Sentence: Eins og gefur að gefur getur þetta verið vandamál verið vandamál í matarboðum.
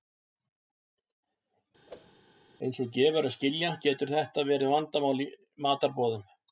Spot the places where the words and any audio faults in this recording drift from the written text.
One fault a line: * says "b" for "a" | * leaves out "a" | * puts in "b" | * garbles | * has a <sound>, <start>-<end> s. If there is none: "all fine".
* has a whoosh, 1.9-2.1 s
* says "skilja" for "gefur"
* leaves out "verið vandamál"